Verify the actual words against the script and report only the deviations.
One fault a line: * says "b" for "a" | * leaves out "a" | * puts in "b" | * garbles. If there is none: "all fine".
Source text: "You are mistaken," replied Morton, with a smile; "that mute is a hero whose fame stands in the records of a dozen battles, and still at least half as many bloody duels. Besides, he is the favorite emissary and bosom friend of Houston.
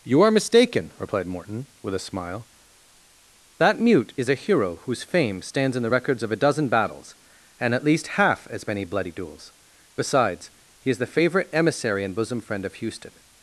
* leaves out "still"